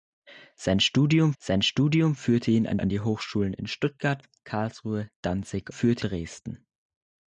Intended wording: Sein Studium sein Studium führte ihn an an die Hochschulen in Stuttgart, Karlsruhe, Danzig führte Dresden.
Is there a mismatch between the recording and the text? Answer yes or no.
no